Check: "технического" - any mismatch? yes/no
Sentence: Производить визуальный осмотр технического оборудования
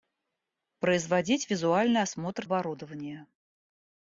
yes